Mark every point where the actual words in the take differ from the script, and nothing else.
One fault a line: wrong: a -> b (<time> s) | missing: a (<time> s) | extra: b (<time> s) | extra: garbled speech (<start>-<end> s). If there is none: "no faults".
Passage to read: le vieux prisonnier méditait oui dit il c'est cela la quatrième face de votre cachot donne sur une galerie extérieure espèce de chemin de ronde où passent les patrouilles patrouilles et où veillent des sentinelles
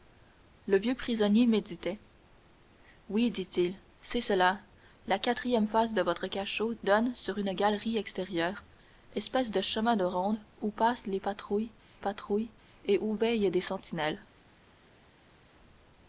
no faults